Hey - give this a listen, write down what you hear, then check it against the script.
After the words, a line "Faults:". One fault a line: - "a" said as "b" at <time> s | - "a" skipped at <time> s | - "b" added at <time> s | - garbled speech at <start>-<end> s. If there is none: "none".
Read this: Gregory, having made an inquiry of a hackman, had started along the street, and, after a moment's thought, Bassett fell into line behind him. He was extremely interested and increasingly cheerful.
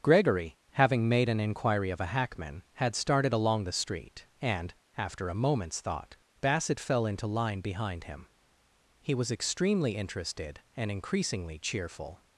Gregory, having made an inquiry of a hackman, had started along the street, and, after a moment's thought, Bassett fell into line behind him. He was extremely interested and increasingly cheerful.
Faults:
none